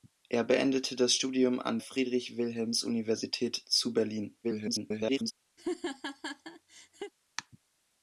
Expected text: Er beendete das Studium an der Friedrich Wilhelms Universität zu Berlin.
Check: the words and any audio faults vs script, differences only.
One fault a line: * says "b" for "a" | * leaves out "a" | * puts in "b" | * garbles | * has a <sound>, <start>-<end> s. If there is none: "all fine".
* leaves out "der"
* garbles
* has a laugh, 5.6-7.1 s